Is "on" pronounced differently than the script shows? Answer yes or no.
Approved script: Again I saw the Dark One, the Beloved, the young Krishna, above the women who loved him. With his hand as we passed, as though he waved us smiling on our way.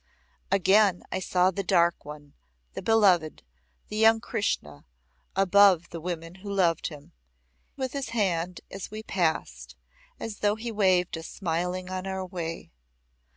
no